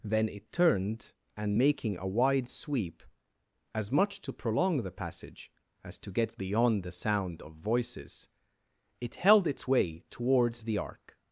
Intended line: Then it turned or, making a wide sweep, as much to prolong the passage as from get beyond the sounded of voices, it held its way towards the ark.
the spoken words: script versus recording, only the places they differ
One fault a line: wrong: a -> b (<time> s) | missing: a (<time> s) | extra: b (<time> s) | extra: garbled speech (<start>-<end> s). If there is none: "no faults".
wrong: or -> and (1.4 s)
wrong: from -> to (6.0 s)
wrong: sounded -> sound (6.9 s)